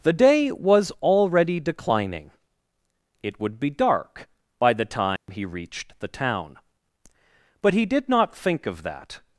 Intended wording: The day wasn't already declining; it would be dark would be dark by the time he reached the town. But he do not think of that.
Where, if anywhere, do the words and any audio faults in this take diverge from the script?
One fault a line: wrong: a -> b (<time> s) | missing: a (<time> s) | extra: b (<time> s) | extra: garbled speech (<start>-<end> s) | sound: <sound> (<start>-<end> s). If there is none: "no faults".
wrong: wasn't -> was (0.5 s)
missing: would be dark (4.3 s)
sound: dropout (5.2-5.3 s)
wrong: do -> did (7.8 s)